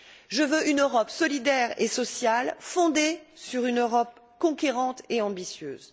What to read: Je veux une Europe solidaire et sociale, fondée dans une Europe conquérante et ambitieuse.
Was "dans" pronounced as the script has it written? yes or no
no